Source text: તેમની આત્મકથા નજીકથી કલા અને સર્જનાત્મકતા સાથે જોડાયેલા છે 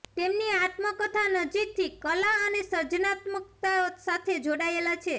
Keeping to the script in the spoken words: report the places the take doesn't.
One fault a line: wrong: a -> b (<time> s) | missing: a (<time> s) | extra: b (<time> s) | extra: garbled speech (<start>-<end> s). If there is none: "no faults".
no faults